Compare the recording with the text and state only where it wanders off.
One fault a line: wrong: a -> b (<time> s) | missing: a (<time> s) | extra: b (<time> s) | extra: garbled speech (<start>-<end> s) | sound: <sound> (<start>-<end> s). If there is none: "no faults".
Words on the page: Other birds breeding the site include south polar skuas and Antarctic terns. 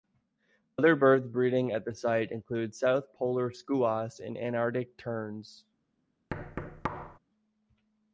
extra: at (1.7 s)
sound: thud (6.3-7.2 s)